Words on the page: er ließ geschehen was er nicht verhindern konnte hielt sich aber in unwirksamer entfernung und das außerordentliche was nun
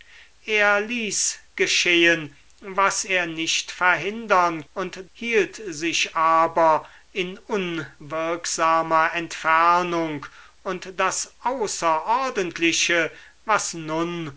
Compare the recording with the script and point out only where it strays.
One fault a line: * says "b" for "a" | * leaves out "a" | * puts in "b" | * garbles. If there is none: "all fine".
* says "und" for "konnte"